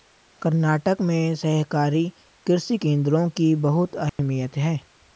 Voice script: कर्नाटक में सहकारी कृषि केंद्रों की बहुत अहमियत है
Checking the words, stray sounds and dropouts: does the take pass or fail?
fail